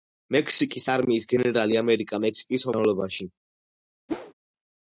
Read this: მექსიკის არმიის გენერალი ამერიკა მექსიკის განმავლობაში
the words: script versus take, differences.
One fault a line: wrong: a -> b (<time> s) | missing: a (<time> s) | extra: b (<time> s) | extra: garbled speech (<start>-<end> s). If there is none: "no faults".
no faults